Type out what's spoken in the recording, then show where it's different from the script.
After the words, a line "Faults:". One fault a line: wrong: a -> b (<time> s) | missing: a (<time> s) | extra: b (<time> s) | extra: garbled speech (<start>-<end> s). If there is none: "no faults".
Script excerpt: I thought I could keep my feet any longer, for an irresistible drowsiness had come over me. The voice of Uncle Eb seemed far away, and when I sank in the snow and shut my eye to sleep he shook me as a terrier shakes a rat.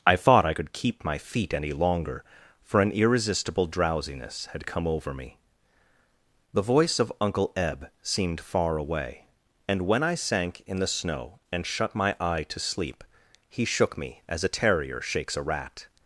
I thought I could keep my feet any longer, for an irresistible drowsiness had come over me. The voice of Uncle Eb seemed far away, and when I sank in the snow and shut my eye to sleep he shook me as a terrier shakes a rat.
Faults:
no faults